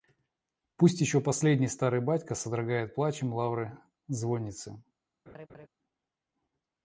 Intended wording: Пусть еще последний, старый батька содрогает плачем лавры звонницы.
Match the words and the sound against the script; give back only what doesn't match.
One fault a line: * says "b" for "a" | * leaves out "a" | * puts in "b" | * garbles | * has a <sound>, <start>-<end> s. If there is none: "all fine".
* has a laugh, 5.3-5.7 s